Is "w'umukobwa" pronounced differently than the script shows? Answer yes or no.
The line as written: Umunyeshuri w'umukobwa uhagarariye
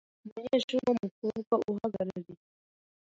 no